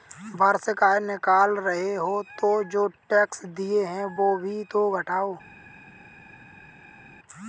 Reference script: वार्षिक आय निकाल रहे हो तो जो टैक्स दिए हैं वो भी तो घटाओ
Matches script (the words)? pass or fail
pass